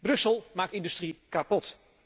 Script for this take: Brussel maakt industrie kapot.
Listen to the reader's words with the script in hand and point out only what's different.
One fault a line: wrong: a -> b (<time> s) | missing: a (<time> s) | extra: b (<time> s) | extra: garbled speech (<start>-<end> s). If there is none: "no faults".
no faults